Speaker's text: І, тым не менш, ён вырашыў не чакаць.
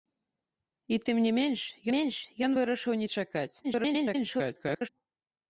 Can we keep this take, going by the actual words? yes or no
no